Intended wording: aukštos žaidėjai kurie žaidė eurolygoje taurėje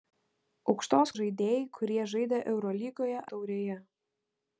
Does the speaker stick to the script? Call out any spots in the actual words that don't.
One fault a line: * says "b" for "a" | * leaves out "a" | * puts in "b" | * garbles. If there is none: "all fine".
all fine